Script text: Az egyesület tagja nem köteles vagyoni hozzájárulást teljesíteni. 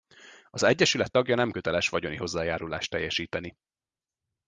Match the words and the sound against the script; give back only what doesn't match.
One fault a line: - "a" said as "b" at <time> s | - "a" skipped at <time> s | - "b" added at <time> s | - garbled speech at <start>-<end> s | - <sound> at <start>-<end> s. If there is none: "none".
none